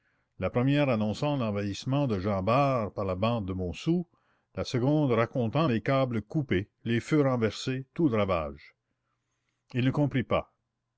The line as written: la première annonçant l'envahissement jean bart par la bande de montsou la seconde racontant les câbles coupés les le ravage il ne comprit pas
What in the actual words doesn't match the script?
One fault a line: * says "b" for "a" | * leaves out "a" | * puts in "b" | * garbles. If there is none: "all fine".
* puts in "de"
* puts in "feux renversés tout"